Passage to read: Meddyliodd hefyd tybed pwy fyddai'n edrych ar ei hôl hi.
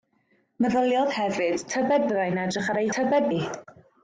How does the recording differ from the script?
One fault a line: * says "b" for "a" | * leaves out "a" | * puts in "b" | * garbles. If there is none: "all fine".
* leaves out "pwy"
* says "tybed" for "hôl"